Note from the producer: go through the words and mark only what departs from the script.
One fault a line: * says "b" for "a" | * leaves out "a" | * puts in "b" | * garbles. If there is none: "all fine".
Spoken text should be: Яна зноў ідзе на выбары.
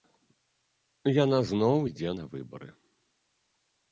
all fine